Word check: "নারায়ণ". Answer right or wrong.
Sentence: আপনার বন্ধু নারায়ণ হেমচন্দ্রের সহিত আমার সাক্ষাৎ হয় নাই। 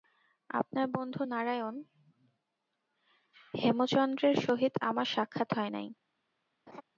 right